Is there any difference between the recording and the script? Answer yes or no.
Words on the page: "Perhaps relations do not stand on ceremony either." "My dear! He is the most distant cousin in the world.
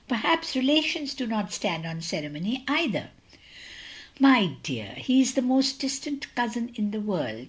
no